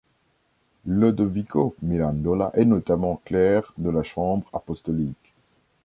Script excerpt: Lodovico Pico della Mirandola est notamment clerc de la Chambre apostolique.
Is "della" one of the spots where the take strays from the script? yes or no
yes